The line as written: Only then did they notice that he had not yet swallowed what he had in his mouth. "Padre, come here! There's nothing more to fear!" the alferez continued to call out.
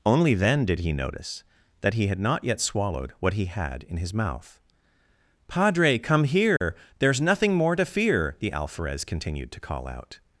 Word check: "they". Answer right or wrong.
wrong